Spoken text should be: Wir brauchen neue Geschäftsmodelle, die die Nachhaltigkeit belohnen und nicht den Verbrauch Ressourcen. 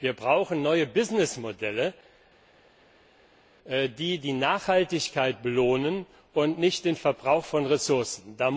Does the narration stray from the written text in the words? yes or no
yes